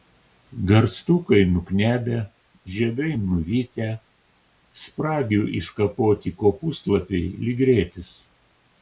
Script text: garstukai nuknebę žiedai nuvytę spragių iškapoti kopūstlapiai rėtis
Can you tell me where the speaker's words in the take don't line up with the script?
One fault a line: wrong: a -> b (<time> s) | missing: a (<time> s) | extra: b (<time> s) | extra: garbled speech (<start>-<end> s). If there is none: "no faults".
extra: lyg (7.5 s)